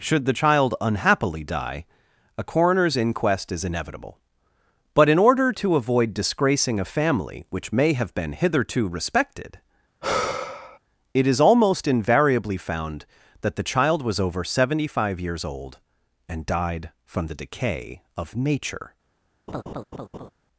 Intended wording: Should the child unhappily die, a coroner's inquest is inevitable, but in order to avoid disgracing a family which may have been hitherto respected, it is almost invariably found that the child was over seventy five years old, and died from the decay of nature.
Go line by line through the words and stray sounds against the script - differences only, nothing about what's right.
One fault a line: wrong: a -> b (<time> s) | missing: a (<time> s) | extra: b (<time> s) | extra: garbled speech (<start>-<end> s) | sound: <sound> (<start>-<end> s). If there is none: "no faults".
sound: sigh (10.0-10.8 s)
sound: laugh (19.5-20.3 s)